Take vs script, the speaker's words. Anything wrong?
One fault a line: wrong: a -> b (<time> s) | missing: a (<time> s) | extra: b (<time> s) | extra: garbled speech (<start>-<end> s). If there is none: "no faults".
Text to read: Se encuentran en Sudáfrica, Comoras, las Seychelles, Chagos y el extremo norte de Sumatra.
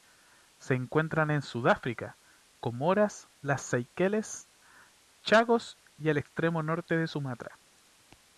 no faults